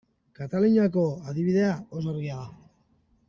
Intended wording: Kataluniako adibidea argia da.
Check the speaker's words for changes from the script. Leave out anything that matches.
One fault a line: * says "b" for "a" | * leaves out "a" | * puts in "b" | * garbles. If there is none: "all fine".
* puts in "oso"